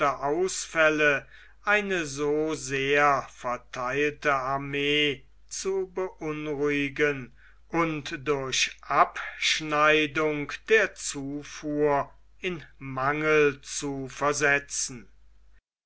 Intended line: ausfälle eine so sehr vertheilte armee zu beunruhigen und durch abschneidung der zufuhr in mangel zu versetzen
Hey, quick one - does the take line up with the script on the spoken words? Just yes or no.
yes